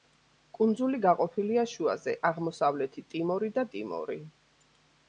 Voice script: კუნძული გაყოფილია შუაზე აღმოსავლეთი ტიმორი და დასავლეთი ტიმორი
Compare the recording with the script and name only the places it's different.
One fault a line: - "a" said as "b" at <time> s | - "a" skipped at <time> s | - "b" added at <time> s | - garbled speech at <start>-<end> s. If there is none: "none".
- "დასავლეთი" skipped at 3.7 s